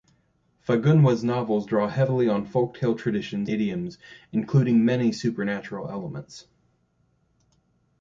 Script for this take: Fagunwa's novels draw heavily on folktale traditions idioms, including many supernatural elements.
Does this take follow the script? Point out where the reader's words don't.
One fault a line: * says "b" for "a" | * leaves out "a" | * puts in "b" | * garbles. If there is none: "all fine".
all fine